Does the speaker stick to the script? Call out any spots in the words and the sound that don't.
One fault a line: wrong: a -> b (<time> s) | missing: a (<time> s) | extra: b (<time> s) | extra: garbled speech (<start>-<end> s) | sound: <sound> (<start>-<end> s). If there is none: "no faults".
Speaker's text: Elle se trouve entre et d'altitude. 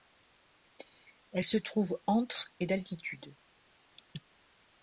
no faults